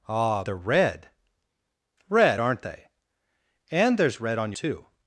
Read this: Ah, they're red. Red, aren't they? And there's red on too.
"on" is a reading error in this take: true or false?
false